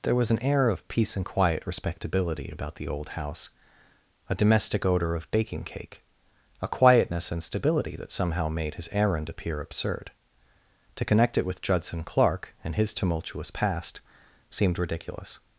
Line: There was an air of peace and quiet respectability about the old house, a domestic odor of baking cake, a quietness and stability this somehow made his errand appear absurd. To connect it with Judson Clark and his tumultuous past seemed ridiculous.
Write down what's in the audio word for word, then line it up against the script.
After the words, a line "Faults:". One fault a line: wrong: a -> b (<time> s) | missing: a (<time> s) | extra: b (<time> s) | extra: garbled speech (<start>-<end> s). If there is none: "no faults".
There was an air of peace and quiet respectability about the old house, a domestic odor of baking cake, a quietness and stability that somehow made his errand appear absurd. To connect it with Judson Clark and his tumultuous past seemed ridiculous.
Faults:
wrong: this -> that (8.0 s)